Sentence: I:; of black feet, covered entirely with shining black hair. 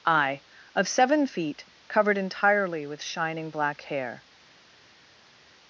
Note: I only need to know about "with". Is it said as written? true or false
true